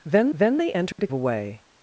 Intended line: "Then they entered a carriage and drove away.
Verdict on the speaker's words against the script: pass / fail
fail